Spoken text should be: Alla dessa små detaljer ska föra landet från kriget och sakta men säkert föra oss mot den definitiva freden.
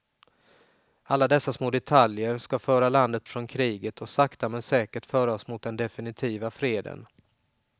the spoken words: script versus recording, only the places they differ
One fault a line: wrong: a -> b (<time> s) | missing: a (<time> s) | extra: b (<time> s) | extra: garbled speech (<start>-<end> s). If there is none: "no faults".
no faults